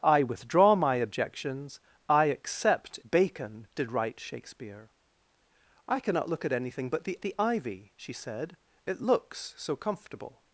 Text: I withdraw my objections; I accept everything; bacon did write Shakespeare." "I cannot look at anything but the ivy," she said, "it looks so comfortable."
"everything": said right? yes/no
no